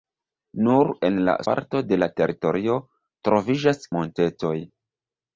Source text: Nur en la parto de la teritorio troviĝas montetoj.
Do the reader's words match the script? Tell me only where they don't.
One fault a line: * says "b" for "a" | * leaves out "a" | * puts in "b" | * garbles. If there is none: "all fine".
all fine